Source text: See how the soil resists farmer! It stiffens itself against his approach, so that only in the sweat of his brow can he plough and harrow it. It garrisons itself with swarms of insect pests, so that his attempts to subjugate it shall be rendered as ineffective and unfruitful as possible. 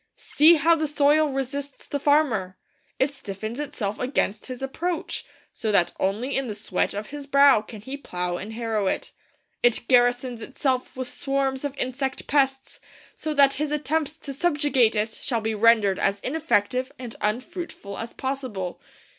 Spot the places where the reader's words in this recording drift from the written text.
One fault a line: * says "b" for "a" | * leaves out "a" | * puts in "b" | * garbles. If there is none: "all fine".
* puts in "the"